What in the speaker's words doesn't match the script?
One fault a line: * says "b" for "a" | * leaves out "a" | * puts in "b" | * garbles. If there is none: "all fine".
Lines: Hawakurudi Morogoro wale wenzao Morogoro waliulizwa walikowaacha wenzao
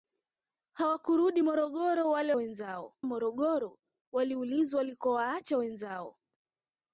all fine